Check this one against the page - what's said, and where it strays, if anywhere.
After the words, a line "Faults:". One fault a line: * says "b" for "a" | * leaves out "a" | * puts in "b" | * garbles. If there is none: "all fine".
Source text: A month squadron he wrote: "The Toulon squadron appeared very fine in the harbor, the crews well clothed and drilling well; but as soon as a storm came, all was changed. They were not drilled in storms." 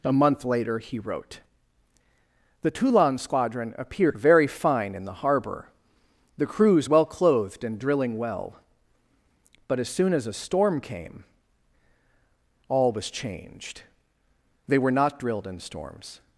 A month later he wrote: "The Toulon squadron appeared very fine in the harbor, the crews well clothed and drilling well; but as soon as a storm came, all was changed. They were not drilled in storms."
Faults:
* says "later" for "squadron"